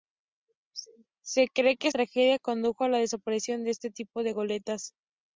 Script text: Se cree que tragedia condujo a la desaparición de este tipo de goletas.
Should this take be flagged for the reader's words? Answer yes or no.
no